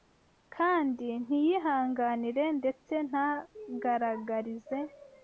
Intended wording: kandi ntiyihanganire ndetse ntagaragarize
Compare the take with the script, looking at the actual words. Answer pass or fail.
pass